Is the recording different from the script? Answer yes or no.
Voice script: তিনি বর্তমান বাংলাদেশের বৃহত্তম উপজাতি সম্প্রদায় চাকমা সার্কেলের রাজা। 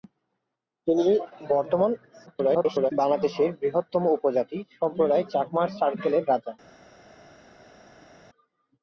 yes